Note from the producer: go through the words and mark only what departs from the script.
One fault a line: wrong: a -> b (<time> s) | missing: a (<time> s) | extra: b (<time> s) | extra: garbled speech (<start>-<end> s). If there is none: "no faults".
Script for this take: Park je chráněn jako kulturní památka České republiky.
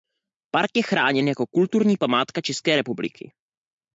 no faults